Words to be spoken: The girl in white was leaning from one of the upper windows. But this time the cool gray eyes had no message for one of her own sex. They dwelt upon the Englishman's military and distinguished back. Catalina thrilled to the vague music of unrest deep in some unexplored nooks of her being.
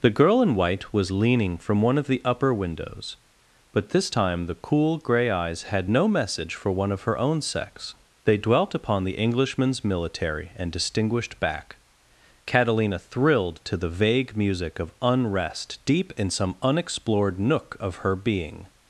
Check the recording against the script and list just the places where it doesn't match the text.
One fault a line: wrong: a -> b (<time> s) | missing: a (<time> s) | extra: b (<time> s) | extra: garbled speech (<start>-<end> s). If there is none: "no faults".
wrong: nooks -> nook (17.4 s)